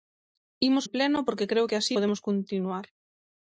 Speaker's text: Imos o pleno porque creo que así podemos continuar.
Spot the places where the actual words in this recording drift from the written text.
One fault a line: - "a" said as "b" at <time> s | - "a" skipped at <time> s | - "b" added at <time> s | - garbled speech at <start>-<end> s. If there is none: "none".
none